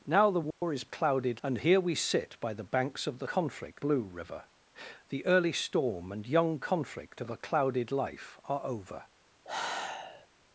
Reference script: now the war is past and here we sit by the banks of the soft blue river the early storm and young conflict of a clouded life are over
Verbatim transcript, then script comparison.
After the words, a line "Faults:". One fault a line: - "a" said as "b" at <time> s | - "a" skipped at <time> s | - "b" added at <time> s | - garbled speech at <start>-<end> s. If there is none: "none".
now the war is clouded and here we sit by the banks of the conflict blue river the early storm and young conflict of a clouded life are over
Faults:
- "past" said as "clouded" at 0.8 s
- "soft" said as "conflict" at 3.2 s